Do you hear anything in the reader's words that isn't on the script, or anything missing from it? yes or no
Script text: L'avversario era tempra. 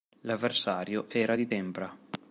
yes